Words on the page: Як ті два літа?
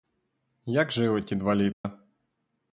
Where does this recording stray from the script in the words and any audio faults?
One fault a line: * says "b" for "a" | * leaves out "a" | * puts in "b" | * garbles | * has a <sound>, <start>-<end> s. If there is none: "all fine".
* puts in "жили"
* has a dropout, 1.7-1.8 s